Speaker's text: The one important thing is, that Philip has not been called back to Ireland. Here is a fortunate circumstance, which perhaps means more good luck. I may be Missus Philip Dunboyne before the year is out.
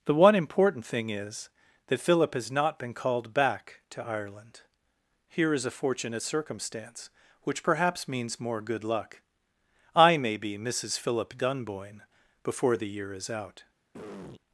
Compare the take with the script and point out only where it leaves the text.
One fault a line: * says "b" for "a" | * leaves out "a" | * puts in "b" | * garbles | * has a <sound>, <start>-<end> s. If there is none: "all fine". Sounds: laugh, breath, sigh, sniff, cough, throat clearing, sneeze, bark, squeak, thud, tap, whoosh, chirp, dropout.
* has a throat clearing, 13.9-14.4 s